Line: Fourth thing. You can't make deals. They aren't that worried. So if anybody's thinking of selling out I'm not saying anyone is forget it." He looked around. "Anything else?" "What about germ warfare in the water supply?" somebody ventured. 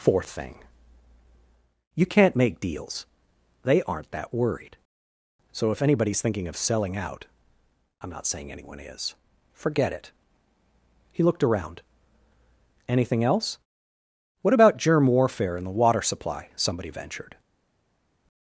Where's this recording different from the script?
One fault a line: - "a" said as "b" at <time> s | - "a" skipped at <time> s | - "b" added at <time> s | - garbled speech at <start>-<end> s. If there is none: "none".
none